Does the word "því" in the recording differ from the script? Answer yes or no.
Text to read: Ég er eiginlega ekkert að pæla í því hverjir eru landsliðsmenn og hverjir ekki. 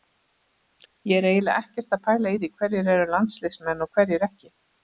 no